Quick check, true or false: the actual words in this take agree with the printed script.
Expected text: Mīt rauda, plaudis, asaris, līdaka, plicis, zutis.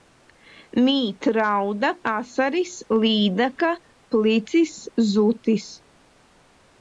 false